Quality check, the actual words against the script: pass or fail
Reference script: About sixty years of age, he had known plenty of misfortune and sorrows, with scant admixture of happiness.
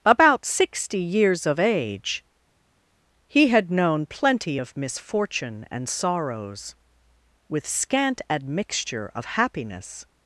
pass